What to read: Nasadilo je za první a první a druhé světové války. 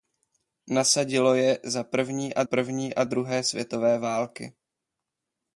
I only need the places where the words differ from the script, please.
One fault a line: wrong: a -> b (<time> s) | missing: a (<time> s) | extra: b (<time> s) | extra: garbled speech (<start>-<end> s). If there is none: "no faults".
no faults